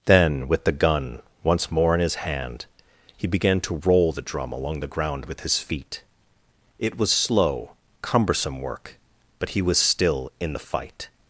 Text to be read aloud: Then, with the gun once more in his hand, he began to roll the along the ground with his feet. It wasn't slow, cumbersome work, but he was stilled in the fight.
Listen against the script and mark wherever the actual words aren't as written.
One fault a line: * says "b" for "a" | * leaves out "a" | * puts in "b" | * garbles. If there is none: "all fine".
* puts in "drum"
* says "was" for "wasn't"
* says "still" for "stilled"